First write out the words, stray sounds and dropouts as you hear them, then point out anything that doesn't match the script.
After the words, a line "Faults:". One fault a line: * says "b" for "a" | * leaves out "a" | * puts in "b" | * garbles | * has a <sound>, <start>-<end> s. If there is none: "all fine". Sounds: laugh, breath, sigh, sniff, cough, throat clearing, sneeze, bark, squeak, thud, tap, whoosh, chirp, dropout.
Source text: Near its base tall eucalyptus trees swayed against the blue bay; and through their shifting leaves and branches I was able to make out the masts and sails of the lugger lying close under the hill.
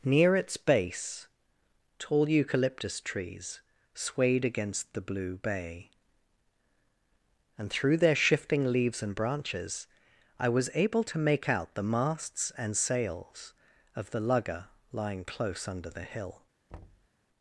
Near its base tall eucalyptus trees swayed against the blue bay; and through their shifting leaves and branches I was able to make out the masts and sails of the lugger lying close under the hill.
Faults:
* has a thud, 16.7-17.1 s